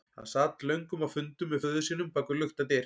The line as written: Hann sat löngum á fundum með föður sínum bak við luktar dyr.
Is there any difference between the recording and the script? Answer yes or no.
no